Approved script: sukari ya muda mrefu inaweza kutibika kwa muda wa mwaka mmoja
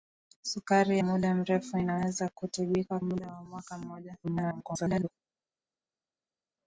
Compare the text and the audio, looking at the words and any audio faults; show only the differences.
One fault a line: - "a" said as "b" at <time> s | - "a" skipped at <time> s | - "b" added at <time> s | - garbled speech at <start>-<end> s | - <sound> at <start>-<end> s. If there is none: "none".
- "ya" skipped at 1.0 s
- "kwa" skipped at 3.0 s
- garbled speech at 4.2-5.1 s